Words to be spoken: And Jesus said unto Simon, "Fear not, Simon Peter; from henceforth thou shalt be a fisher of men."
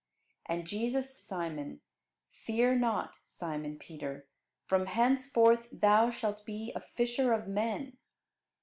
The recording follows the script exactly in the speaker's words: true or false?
false